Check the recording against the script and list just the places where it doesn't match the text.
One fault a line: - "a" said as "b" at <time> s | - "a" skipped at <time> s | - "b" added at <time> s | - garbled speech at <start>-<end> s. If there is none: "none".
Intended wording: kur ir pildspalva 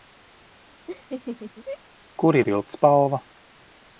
none